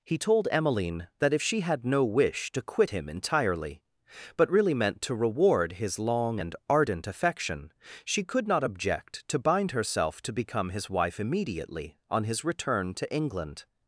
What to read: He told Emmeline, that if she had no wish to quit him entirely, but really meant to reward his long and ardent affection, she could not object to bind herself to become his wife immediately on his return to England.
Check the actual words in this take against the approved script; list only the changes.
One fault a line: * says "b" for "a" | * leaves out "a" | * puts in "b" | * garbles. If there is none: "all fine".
all fine